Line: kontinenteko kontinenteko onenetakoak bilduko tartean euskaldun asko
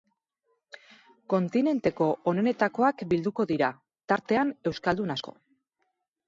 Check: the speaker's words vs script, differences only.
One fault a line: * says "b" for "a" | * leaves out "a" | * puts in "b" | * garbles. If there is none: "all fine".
* leaves out "kontinenteko"
* puts in "dira"